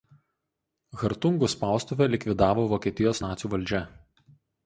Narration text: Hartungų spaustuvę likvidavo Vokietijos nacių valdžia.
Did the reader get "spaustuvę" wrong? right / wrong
right